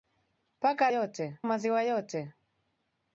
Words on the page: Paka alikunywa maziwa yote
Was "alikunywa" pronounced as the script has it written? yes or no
no